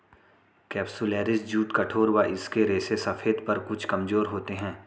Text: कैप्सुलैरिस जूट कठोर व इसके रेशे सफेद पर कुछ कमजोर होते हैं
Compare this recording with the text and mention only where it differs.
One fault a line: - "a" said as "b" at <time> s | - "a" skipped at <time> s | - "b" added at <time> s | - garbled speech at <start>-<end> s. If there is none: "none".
none